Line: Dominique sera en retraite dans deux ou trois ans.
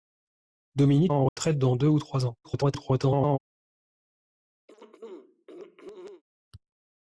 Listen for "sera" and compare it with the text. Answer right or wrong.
wrong